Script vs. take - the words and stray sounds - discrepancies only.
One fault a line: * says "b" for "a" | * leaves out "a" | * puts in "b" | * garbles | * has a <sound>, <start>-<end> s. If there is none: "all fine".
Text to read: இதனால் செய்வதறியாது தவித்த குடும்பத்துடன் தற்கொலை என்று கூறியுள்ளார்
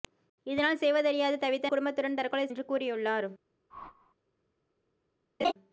* has a whoosh, 3.7-4.1 s
* has a laugh, 5.4-5.5 s